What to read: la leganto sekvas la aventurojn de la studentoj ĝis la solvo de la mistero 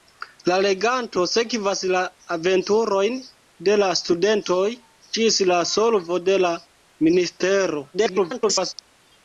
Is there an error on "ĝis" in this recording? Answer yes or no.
no